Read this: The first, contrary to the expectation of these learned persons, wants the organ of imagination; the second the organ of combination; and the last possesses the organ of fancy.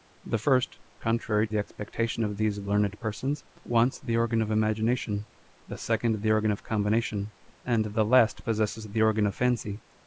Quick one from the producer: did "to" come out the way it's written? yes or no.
no